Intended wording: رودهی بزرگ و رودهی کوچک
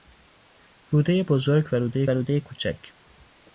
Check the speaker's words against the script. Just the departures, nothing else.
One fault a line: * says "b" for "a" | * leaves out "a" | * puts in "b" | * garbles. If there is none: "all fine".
* puts in "رودهی"